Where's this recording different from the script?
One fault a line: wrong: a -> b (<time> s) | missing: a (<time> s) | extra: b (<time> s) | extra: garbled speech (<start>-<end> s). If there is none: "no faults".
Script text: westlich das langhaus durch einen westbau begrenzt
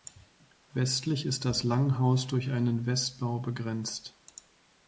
extra: ist (1.3 s)